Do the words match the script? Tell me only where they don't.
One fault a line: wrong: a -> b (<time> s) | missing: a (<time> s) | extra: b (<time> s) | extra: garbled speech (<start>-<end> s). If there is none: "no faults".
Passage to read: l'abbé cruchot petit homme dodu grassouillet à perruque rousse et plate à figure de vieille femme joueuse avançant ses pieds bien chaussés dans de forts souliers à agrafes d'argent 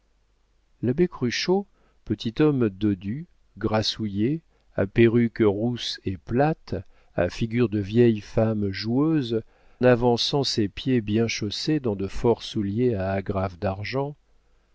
no faults